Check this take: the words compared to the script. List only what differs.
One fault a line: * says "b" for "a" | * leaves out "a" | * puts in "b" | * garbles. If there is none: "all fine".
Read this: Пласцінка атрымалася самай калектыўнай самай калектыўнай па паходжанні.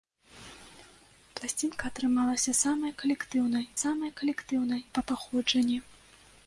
all fine